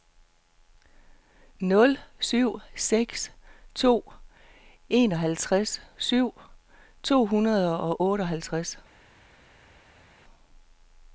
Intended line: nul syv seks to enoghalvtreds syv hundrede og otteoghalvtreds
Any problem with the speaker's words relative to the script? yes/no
no